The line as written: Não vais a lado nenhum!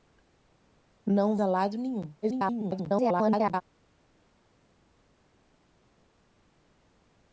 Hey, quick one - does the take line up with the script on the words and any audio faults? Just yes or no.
no